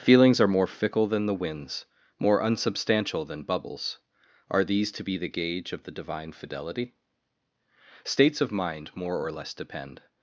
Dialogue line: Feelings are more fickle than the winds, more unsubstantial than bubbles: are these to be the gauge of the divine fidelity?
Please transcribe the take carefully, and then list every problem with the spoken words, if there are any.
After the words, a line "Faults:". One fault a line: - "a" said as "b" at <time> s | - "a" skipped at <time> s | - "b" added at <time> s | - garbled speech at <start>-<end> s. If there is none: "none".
Feelings are more fickle than the winds, more unsubstantial than bubbles: are these to be the gauge of the divine fidelity? States of mind more or less depend
Faults:
- "States of mind more or less depend" added at 8.0 s